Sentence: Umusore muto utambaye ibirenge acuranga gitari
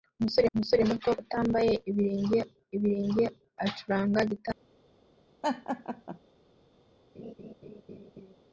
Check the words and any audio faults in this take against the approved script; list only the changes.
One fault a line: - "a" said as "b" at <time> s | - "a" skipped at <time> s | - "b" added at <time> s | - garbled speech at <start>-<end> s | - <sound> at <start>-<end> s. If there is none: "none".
- "umusore" added at 0.5 s
- "ibirenge" added at 2.8 s
- laugh at 5.4-6.2 s
- laugh at 7.1-8.3 s